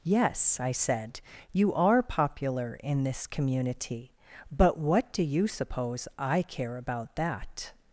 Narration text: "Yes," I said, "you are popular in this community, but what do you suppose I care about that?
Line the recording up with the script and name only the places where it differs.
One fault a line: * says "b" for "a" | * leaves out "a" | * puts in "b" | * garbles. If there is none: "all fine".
all fine